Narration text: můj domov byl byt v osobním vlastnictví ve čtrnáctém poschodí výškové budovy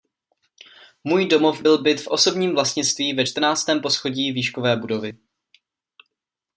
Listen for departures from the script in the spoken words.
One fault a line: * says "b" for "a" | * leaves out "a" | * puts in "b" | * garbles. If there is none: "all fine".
all fine